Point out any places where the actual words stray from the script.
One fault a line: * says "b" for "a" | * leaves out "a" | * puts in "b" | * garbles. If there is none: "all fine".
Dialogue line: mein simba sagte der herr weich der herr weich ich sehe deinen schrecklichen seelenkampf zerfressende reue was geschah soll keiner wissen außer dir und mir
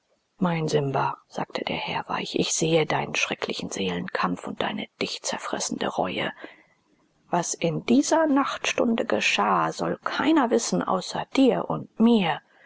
* leaves out "der herr weich"
* puts in "und deine dich"
* puts in "in dieser nachtstunde"